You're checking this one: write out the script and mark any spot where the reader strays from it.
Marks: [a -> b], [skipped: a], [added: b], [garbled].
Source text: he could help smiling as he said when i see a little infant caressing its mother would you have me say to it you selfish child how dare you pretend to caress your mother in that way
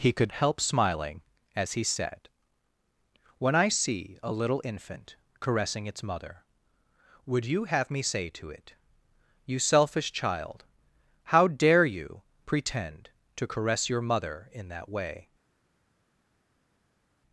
he could help smiling as he said when i see a little infant caressing its mother would you have me say to it you selfish child how dare you pretend to caress your mother in that way